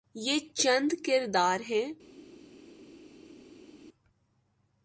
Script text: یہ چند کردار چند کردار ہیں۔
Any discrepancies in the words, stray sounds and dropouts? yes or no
yes